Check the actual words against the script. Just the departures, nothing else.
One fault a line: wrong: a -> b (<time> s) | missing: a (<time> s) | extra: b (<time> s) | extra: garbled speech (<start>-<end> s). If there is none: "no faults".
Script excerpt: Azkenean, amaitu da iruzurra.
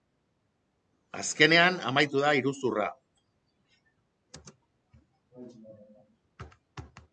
no faults